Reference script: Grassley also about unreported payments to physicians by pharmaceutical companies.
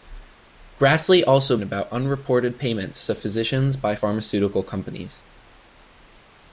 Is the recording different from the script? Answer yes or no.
no